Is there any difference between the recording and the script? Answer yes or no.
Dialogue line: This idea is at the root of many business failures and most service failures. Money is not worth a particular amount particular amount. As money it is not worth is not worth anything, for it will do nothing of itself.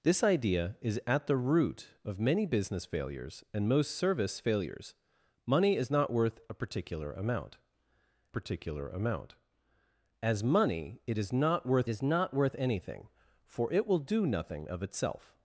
no